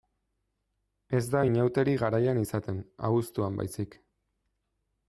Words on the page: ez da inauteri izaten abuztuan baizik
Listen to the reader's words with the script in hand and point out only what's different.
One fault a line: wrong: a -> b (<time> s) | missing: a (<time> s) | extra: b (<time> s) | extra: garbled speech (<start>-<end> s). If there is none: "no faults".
extra: garaian (2.0 s)